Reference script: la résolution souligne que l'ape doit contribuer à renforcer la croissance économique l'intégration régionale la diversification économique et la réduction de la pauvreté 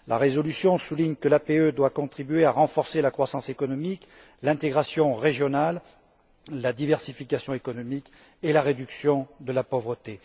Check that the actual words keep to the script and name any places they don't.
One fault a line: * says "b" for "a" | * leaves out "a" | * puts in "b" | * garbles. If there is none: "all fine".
all fine